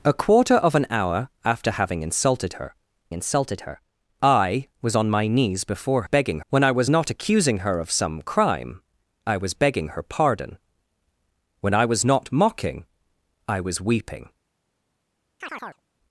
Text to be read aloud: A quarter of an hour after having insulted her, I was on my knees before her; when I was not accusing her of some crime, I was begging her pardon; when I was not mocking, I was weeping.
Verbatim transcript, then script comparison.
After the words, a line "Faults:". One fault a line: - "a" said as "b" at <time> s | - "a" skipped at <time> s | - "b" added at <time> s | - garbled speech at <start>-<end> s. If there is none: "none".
A quarter of an hour after having insulted her insulted her, I was on my knees before begging; when I was not accusing her of some crime, I was begging her pardon; when I was not mocking, I was weeping.
Faults:
- "insulted her" added at 3.1 s
- "her" said as "begging" at 6.0 s